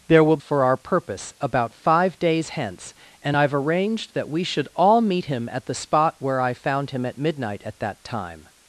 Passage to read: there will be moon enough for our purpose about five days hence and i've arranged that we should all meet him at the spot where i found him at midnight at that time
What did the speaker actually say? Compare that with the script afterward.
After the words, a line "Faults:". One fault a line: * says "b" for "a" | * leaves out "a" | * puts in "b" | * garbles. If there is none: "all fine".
there will for our purpose about five days hence and i've arranged that we should all meet him at the spot where i found him at midnight at that time
Faults:
* leaves out "be moon enough"